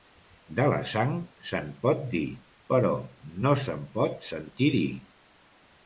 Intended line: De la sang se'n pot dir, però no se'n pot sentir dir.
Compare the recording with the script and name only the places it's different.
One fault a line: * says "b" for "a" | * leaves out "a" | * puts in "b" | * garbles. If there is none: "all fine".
all fine